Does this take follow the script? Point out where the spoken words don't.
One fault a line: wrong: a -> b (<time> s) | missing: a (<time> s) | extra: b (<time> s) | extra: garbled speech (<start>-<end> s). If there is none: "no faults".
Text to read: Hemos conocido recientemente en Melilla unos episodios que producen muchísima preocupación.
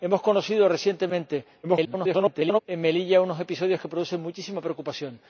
extra: garbled speech (1.6-2.6 s)